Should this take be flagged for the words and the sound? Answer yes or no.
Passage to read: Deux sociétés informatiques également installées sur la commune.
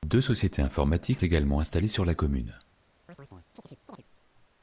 yes